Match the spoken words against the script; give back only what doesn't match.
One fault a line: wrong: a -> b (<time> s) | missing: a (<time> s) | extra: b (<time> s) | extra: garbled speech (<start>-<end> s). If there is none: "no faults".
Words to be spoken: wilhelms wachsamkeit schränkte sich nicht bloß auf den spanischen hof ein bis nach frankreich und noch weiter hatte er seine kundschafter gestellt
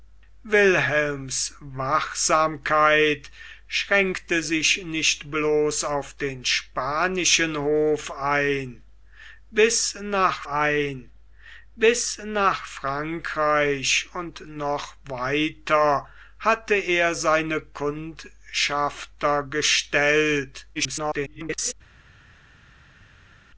extra: ein bis nach (10.5 s)
extra: garbled speech (20.8-21.7 s)